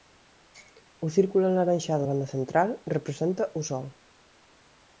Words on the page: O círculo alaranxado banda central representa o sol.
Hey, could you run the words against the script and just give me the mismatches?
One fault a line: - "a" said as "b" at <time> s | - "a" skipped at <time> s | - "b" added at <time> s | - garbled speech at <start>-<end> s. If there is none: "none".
none